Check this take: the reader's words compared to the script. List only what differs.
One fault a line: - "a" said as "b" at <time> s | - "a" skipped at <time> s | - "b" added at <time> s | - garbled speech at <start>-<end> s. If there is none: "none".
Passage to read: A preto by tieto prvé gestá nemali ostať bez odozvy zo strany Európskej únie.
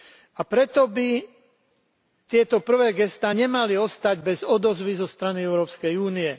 none